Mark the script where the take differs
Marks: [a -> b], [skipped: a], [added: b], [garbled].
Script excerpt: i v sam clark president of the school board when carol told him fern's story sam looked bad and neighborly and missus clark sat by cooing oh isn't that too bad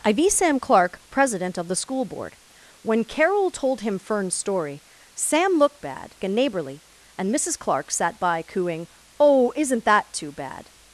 i v sam clark president of the school board when carol told him fern's story sam looked bad and neighborly and missus clark sat by cooing oh isn't that too bad